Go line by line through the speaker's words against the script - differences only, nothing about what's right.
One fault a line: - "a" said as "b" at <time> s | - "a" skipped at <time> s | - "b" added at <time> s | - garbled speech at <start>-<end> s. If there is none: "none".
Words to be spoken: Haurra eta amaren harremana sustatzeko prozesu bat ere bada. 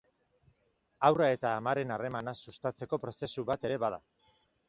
none